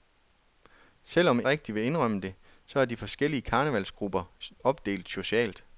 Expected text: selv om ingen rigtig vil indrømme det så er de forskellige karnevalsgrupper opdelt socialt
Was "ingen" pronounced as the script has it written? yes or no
no